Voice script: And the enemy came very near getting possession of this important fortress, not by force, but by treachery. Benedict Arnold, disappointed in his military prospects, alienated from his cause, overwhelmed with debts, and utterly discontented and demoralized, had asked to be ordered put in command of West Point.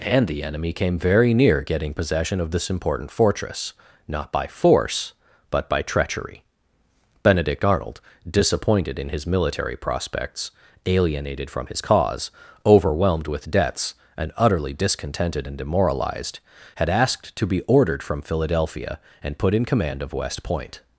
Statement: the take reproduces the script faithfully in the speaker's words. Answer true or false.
false